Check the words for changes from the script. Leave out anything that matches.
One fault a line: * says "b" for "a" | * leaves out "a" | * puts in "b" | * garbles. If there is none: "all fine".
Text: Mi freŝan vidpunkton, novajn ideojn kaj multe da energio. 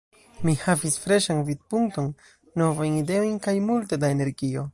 * puts in "havis"